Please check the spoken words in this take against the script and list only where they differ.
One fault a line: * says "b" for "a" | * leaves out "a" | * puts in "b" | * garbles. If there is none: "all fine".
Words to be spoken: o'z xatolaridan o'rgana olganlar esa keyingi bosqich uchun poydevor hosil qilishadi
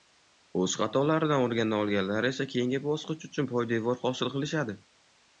all fine